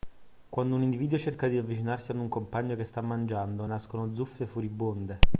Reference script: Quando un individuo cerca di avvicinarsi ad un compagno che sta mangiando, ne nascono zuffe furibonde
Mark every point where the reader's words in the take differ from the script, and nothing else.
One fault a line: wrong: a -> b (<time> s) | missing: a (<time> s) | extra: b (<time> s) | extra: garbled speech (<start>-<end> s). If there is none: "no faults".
missing: ne (3.7 s)